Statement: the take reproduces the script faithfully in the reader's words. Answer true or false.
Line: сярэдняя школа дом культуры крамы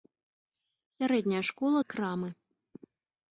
false